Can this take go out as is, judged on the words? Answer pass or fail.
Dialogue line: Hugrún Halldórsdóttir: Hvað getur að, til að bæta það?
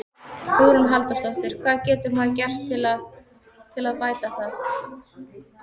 fail